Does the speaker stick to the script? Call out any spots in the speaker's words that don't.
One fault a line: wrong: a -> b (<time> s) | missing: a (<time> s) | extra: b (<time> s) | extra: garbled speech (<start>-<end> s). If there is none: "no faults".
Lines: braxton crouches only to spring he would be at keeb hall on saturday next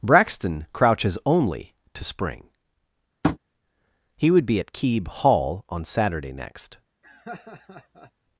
no faults